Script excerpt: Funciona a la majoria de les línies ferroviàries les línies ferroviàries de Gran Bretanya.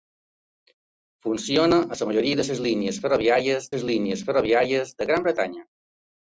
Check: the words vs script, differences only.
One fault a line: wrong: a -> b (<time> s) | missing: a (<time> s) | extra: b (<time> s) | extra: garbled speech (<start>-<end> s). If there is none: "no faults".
no faults